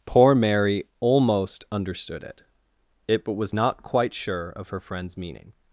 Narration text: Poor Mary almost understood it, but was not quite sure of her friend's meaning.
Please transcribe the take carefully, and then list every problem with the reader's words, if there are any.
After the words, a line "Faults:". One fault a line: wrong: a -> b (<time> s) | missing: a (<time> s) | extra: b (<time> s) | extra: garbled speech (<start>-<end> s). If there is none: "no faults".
Poor Mary almost understood it it, but was not quite sure of her friend's meaning.
Faults:
extra: it (3.1 s)